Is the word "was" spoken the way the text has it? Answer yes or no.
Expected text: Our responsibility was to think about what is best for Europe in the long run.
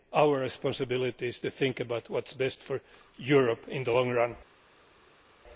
no